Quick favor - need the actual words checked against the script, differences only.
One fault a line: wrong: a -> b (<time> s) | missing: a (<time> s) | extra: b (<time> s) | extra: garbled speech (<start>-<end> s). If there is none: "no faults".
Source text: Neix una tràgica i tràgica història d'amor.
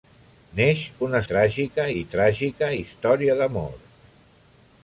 no faults